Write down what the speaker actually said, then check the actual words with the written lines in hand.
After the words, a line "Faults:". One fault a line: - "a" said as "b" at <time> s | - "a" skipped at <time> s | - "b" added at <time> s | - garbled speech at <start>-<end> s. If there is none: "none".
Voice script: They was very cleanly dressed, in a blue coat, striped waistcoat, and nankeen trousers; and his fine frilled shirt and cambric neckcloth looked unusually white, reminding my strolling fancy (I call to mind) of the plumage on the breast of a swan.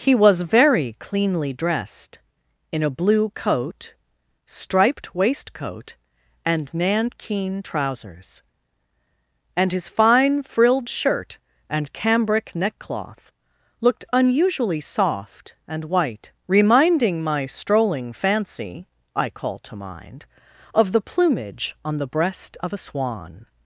He was very cleanly dressed, in a blue coat, striped waistcoat, and nankeen trousers; and his fine frilled shirt and cambric neckcloth looked unusually soft and white, reminding my strolling fancy (I call to mind) of the plumage on the breast of a swan.
Faults:
- "They" said as "He" at 0.0 s
- "soft and" added at 14.8 s